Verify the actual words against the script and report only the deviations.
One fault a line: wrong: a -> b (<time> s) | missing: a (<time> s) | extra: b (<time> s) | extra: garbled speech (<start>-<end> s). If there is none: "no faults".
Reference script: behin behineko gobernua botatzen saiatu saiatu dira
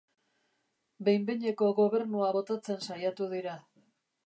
missing: saiatu (3.3 s)